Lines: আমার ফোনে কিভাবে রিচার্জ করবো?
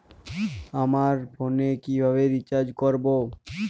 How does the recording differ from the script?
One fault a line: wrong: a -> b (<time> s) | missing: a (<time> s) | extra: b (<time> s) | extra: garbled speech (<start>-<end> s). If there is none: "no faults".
no faults